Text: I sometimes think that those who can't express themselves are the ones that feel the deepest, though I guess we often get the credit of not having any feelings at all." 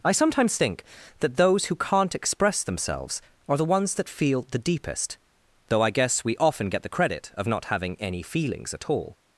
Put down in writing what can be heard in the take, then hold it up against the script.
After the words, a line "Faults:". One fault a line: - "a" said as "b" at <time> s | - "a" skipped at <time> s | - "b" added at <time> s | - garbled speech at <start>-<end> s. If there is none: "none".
I sometimes think that those who can't express themselves are the ones that feel the deepest, though I guess we often get the credit of not having any feelings at all."
Faults:
none